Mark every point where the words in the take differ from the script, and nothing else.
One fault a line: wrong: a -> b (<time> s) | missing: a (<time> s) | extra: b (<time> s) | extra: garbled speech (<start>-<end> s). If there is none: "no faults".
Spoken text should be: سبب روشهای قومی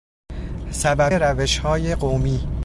no faults